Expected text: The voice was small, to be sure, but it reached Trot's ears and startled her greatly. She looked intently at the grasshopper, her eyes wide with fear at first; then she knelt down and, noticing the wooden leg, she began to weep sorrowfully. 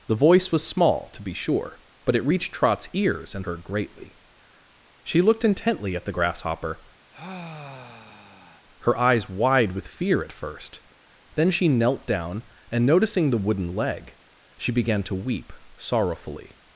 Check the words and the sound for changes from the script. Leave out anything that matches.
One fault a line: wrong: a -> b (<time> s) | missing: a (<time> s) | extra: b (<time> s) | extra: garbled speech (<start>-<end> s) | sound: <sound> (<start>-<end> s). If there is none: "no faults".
missing: startled (3.5 s)
sound: sigh (7.1-8.7 s)